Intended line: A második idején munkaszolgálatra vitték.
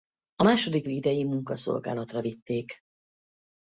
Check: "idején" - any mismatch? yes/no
no